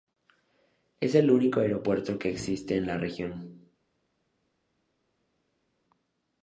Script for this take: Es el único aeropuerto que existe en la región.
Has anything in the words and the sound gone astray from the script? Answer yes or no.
no